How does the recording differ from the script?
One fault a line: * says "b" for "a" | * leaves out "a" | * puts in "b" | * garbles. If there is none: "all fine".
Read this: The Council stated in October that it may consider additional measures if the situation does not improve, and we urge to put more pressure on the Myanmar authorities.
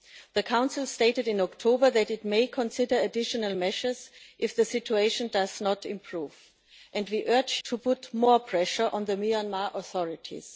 all fine